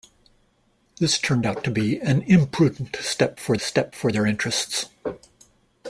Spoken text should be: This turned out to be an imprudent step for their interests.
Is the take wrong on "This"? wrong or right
right